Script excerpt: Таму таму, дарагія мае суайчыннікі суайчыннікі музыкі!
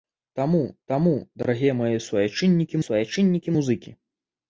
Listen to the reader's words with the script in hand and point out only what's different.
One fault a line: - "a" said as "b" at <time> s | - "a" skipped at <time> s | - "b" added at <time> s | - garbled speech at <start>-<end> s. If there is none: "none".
none